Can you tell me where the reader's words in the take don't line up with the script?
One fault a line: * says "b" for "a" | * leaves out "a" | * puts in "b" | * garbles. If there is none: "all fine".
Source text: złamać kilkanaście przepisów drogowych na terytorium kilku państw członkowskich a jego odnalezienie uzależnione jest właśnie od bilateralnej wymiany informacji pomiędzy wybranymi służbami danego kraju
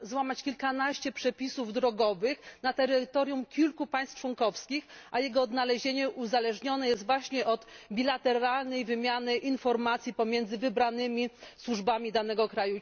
all fine